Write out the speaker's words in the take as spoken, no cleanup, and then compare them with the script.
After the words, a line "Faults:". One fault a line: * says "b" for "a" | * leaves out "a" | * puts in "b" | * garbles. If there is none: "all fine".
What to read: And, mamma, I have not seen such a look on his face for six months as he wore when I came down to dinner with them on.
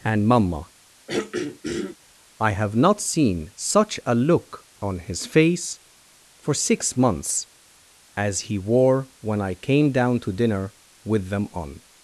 And, mamma, I have not seen such a look on his face for six months as he wore when I came down to dinner with them on.
Faults:
all fine